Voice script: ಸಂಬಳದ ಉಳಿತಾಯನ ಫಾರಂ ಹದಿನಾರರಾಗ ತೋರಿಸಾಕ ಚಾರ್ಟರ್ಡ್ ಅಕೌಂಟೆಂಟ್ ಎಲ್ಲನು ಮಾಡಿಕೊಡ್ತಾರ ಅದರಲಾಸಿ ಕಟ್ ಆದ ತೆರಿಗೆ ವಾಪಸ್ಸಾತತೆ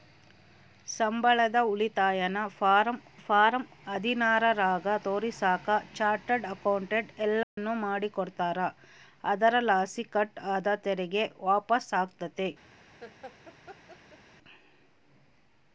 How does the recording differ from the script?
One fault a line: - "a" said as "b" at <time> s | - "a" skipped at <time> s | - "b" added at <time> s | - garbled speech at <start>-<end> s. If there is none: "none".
- "ಫಾರಂ" added at 3.2 s